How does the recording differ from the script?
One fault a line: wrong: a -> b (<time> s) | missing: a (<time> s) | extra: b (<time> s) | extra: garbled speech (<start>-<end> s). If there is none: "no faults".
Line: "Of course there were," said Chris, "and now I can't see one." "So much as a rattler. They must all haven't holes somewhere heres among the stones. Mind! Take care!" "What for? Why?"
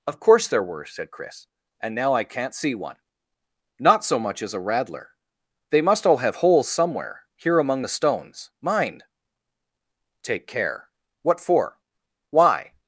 extra: Not (3.8 s)
wrong: haven't -> have (6.2 s)
wrong: heres -> here (7.3 s)